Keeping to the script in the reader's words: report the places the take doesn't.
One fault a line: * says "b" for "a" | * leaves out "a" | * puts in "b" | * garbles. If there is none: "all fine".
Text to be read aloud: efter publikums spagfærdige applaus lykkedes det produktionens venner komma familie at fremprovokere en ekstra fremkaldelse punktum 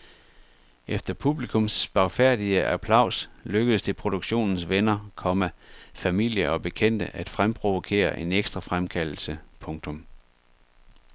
* puts in "og bekendte"